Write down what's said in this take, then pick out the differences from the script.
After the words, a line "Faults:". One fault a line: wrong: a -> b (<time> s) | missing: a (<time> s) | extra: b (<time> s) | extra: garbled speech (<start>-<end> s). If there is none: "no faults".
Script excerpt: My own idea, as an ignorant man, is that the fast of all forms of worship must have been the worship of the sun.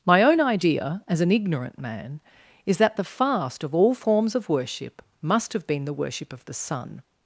My own idea, as an ignorant man, is that the fast of all forms of worship must have been the worship of the sun.
Faults:
no faults